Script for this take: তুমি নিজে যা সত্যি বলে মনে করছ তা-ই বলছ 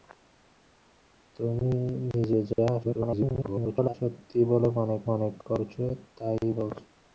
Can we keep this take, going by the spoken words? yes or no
no